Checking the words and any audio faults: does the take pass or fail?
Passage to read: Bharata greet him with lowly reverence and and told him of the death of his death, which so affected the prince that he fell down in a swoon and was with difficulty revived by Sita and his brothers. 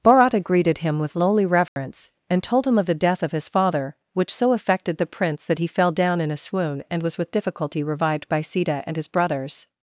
fail